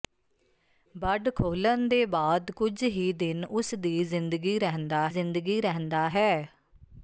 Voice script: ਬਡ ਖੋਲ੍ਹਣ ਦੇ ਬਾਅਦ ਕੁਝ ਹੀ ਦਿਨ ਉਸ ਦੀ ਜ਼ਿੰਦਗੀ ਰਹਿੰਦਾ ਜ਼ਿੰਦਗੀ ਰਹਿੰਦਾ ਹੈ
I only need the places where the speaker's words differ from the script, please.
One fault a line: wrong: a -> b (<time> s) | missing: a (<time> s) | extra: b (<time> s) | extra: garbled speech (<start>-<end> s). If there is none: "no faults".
no faults